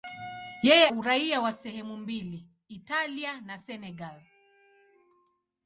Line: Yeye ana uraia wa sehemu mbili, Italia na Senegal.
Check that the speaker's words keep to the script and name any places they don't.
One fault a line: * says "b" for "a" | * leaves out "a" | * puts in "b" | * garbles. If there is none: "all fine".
* leaves out "ana"